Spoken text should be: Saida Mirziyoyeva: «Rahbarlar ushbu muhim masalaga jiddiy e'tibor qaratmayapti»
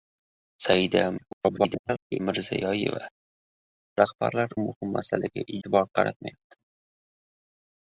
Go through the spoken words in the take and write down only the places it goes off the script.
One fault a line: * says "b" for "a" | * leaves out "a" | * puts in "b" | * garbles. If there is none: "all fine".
* garbles
* leaves out "ushbu"
* leaves out "jiddiy"